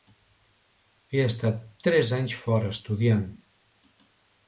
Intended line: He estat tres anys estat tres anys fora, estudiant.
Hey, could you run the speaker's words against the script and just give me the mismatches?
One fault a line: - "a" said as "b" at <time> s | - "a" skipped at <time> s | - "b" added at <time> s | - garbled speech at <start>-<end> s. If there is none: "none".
- "estat tres anys" skipped at 2.4 s